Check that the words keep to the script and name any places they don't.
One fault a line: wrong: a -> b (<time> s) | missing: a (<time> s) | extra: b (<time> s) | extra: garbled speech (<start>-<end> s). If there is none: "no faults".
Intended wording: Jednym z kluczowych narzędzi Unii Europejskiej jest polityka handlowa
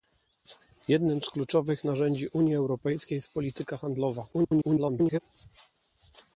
extra: garbled speech (4.3-5.2 s)